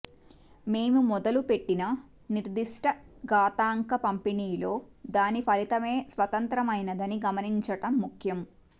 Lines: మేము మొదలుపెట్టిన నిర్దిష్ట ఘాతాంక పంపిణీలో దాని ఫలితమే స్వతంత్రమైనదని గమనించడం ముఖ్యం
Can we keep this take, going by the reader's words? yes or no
yes